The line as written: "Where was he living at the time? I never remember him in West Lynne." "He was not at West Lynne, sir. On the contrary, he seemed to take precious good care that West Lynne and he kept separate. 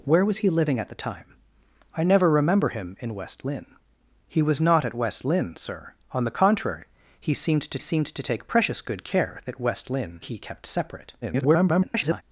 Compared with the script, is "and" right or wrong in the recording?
wrong